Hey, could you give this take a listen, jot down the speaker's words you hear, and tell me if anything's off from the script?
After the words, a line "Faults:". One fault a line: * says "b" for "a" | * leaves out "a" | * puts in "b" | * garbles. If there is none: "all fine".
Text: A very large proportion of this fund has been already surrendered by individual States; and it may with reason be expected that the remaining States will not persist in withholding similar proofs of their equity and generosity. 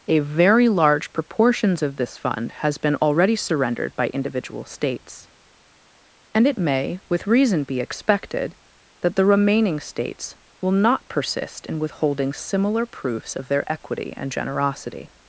A very large proportions of this fund has been already surrendered by individual States; and it may with reason be expected that the remaining States will not persist in withholding similar proofs of their equity and generosity.
Faults:
* says "proportions" for "proportion"